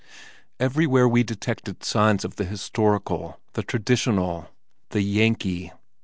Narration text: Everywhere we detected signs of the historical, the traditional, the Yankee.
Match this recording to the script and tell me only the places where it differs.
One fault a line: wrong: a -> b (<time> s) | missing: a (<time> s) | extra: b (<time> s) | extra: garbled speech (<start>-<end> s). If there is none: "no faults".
no faults